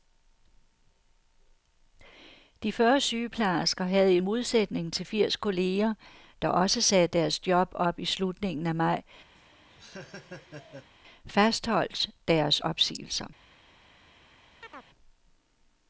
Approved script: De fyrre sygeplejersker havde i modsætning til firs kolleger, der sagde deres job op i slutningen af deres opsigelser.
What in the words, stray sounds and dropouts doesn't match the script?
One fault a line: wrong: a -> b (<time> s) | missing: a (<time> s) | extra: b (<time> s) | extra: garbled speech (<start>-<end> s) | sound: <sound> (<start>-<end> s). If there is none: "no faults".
extra: også (6.5 s)
extra: maj fastholdt (8.7 s)
sound: laugh (9.3-10.9 s)
sound: chirp (14.6-14.9 s)